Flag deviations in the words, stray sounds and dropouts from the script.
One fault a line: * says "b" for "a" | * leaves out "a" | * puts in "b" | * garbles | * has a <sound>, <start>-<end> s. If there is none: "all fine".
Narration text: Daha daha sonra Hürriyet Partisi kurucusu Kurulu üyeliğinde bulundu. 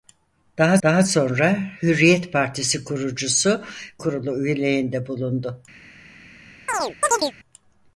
* has a chirp, 6.7-7.3 s